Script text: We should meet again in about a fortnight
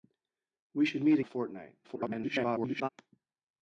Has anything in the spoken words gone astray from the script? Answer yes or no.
yes